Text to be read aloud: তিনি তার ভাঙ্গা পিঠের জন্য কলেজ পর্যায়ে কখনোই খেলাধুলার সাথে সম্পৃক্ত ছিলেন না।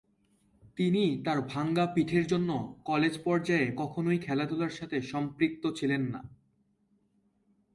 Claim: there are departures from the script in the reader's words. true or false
false